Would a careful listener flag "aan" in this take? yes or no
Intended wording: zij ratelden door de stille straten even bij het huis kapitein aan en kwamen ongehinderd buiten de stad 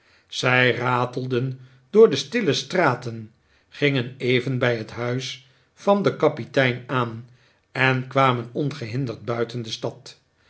no